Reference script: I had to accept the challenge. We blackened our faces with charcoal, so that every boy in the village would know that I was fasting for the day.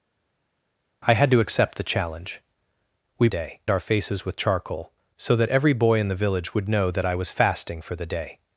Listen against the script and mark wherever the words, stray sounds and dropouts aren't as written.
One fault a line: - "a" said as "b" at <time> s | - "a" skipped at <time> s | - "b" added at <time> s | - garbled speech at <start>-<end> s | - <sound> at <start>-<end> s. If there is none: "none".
- "blackened" said as "day" at 3.3 s